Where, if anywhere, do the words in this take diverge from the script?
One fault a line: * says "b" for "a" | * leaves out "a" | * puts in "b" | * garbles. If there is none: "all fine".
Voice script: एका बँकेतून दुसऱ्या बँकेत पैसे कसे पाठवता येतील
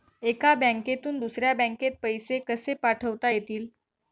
all fine